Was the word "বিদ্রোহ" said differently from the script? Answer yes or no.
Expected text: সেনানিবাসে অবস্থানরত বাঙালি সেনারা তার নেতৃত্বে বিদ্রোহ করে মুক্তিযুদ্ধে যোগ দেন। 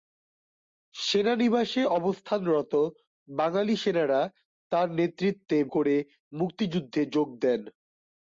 yes